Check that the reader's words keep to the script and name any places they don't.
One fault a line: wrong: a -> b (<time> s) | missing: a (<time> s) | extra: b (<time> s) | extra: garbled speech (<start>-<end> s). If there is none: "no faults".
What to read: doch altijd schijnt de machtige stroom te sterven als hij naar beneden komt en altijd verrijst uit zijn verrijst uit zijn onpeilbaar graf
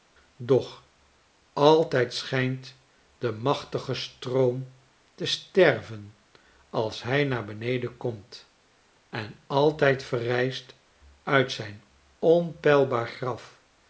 missing: verrijst uit zijn (11.8 s)